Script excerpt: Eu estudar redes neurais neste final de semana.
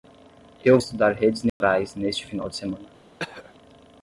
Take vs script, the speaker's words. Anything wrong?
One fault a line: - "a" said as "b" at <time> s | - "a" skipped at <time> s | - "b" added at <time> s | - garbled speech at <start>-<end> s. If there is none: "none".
none